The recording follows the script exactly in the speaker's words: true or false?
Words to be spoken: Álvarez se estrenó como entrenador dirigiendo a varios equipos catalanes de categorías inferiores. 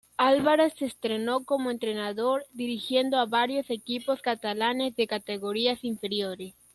true